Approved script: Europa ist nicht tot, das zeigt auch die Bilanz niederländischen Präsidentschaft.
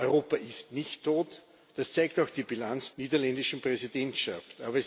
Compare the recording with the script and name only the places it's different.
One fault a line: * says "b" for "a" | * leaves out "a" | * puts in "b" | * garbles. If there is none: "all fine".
all fine